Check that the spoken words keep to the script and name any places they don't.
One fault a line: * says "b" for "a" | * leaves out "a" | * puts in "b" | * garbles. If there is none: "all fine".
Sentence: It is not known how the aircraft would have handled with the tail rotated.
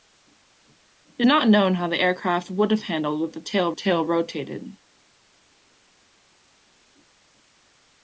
* leaves out "is"
* puts in "tail"